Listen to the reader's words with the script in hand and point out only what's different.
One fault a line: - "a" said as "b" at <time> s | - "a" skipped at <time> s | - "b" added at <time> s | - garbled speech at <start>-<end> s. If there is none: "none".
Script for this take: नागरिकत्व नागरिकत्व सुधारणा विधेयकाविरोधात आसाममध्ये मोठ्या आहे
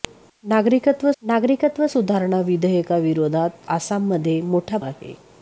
none